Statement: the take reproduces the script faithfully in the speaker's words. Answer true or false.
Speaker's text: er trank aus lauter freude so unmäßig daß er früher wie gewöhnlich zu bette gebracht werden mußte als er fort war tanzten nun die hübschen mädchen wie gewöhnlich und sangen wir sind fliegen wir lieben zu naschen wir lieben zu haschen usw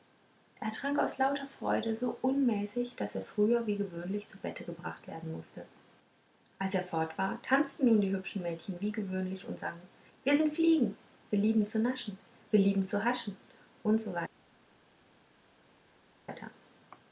true